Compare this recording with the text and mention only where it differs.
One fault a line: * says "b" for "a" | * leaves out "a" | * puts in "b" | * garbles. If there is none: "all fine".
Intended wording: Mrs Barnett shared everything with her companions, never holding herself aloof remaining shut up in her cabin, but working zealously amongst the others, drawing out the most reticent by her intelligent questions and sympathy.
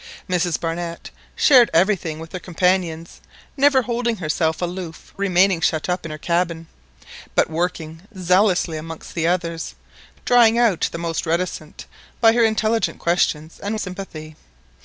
all fine